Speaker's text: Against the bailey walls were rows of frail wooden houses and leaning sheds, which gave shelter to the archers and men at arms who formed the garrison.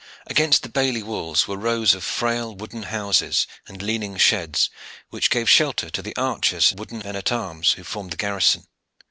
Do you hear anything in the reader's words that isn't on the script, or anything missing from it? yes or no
yes